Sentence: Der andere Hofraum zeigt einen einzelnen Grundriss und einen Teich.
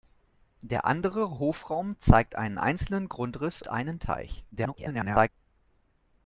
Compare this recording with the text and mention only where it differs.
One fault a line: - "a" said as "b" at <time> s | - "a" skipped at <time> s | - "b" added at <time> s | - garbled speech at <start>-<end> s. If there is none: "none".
- "und" skipped at 3.6 s
- garbled speech at 4.5-5.3 s